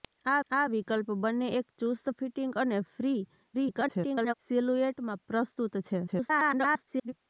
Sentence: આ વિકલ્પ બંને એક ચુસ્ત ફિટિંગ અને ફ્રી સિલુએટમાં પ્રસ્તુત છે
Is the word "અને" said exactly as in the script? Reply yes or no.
yes